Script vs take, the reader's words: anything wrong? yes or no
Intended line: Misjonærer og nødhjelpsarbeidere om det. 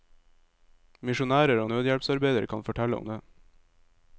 yes